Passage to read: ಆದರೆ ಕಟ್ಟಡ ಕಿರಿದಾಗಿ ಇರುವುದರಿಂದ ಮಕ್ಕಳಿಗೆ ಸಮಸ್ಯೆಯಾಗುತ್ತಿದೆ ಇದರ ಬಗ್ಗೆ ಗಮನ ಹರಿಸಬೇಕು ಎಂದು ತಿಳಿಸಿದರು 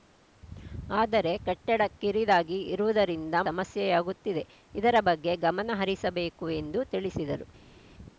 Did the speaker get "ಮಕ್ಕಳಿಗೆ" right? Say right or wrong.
wrong